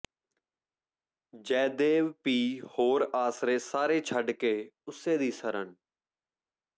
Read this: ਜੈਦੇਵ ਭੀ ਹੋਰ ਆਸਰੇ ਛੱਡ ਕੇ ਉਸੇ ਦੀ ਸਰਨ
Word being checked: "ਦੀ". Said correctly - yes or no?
yes